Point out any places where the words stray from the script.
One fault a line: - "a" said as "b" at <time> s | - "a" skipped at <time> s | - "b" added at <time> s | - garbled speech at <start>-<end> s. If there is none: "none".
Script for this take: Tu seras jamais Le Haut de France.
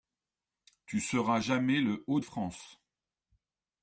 - "de" skipped at 2.2 s